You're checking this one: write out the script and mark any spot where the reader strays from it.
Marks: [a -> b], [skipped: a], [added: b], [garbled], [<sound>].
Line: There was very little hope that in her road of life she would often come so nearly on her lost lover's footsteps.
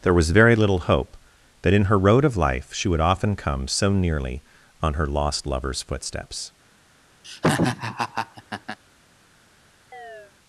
There was very little hope that in her road of life she would often come so nearly on her lost lover's footsteps. [laugh] [chirp]